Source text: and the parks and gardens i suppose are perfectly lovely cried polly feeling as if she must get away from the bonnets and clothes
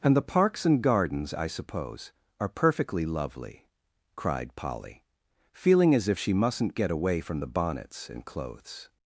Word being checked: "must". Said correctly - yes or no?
no